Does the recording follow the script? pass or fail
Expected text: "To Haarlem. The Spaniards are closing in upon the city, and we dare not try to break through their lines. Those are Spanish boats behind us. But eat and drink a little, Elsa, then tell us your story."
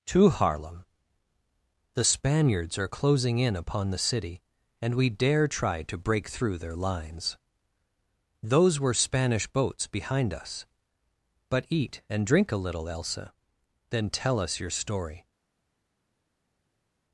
fail